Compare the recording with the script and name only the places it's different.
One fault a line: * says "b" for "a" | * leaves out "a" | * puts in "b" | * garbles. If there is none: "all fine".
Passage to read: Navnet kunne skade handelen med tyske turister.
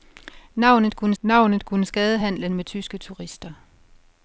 * puts in "navnet kunne"